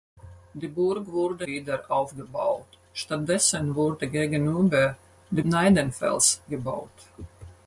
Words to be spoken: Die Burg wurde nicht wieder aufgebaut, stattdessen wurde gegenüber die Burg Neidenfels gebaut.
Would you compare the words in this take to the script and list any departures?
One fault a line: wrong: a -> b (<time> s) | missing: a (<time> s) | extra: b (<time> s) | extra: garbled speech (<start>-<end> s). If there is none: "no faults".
missing: nicht (1.5 s)
missing: Burg (5.4 s)